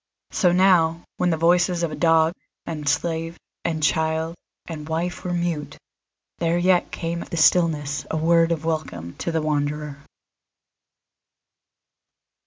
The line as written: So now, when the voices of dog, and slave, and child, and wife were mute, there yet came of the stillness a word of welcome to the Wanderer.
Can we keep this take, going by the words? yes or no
yes